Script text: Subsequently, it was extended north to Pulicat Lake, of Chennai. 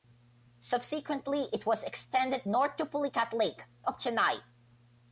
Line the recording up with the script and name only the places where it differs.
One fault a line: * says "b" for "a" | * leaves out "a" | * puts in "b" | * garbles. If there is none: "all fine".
all fine